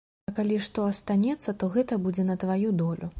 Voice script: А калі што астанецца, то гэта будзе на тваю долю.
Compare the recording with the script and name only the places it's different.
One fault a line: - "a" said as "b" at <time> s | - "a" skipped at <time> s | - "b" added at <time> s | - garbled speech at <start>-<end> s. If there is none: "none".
none